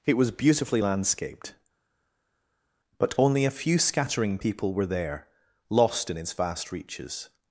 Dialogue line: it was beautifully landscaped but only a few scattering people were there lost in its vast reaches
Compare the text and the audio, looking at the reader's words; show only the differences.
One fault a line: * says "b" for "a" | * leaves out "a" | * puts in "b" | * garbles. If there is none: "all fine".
all fine